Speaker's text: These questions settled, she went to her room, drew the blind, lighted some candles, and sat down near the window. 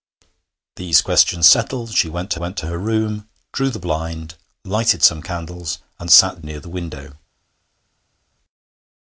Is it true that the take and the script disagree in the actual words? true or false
true